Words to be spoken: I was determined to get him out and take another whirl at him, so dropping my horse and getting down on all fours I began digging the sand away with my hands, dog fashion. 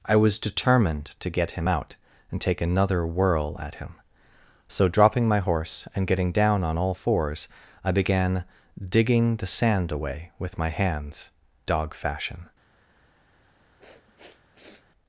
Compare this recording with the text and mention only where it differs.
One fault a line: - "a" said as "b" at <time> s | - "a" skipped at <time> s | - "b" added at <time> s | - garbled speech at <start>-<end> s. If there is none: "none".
none